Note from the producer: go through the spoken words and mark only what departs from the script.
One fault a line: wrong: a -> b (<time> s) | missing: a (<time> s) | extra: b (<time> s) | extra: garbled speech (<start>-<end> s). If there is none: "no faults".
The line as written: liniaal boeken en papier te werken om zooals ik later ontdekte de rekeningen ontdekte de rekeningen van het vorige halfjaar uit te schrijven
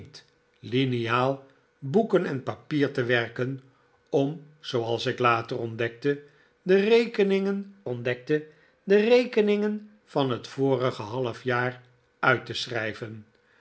no faults